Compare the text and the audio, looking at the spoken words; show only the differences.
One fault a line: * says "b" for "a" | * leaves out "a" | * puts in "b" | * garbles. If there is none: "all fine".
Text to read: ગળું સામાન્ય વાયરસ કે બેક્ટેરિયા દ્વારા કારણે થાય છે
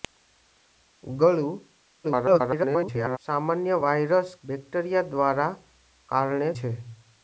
* garbles
* leaves out "કે"
* leaves out "થાય"